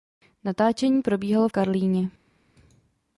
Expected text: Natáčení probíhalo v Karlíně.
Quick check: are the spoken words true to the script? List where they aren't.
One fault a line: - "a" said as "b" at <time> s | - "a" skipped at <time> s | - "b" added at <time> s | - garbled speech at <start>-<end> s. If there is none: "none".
none